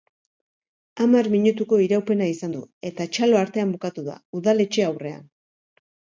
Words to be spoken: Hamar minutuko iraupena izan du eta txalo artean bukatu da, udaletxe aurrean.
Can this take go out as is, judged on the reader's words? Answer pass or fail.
pass